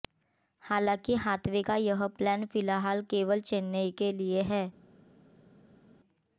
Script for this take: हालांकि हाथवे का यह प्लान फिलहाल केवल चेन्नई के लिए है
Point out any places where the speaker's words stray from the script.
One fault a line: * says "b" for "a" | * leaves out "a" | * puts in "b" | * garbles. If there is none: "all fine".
all fine